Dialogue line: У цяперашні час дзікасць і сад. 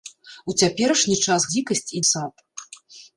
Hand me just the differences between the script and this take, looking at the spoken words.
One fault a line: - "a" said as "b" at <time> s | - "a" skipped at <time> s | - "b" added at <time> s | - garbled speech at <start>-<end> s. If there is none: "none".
none